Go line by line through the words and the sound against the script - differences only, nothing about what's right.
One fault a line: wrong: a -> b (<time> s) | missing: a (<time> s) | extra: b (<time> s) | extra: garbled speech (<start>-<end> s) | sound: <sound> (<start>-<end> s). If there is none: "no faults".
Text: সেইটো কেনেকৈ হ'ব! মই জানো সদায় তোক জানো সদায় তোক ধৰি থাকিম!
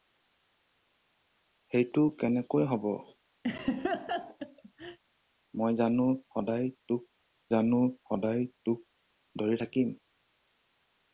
sound: laugh (3.4-5.0 s)